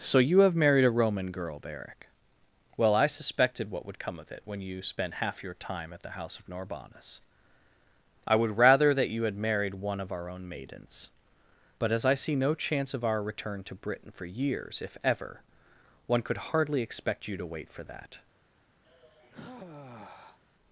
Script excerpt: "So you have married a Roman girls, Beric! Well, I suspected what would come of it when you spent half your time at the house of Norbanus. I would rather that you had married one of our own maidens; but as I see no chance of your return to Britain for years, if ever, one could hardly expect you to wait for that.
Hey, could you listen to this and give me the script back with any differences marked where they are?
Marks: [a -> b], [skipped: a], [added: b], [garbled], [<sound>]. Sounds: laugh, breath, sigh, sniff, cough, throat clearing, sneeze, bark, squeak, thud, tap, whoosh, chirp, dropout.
"So you have married a Roman [girls, -> girl] Beric! Well, I suspected what would come of it when you spent half your time at the house of Norbanus. I would rather that you had married one of our own maidens; but as I see no chance of [your -> our] return to Britain for years, if ever, one could hardly expect you to wait for that. [sigh]